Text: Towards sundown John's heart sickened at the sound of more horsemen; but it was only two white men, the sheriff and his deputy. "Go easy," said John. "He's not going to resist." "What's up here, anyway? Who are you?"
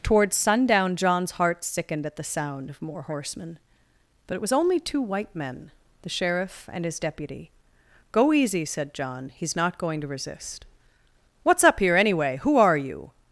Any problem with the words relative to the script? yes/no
no